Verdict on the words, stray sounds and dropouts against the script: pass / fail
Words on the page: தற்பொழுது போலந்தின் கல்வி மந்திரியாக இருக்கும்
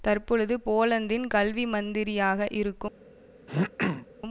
fail